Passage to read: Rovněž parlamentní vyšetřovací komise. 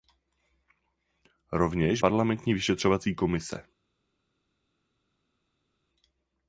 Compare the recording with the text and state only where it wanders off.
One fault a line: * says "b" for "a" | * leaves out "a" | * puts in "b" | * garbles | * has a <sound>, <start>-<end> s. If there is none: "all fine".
all fine